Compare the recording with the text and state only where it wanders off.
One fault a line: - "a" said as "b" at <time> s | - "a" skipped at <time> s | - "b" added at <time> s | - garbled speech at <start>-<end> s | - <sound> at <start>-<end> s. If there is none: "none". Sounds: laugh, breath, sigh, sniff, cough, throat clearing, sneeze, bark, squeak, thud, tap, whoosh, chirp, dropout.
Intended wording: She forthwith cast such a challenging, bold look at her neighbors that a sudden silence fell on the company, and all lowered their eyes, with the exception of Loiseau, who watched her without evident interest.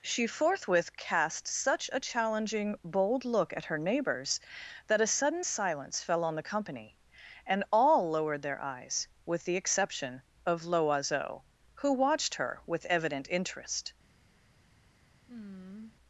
- "without" said as "with" at 12.7 s
- sigh at 15.3-16.0 s